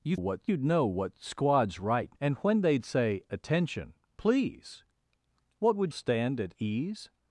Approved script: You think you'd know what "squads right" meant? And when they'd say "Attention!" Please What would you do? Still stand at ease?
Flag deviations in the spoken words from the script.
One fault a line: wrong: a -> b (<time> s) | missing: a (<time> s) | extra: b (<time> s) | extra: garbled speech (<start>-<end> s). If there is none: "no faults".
wrong: think -> what (0.1 s)
missing: meant (2.2 s)
missing: you do Still (5.9 s)